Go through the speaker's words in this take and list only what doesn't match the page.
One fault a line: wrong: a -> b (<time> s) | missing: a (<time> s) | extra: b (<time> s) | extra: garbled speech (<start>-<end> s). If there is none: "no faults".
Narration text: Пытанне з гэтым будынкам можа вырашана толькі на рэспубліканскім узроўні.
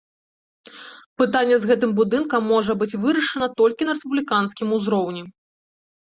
extra: быць (2.8 s)